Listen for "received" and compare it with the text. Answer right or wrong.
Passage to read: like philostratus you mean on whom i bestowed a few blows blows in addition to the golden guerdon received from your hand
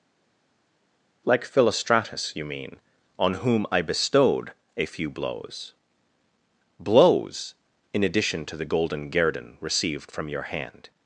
right